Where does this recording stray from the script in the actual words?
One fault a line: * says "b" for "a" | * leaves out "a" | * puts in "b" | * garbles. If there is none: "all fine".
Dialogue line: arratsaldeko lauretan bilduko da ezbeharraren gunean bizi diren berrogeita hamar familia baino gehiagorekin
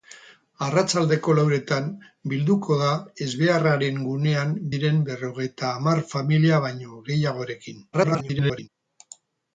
* leaves out "bizi"
* garbles